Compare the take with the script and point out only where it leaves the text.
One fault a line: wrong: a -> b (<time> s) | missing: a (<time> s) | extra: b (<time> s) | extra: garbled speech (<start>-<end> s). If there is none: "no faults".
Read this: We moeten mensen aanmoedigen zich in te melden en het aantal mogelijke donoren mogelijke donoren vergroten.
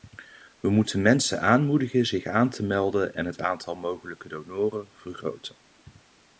wrong: in -> aan (2.2 s)
missing: mogelijke donoren (4.9 s)